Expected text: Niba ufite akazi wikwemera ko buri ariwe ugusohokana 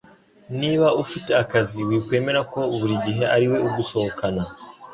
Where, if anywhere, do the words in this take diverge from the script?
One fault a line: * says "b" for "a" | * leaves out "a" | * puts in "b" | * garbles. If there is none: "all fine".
* puts in "gihe"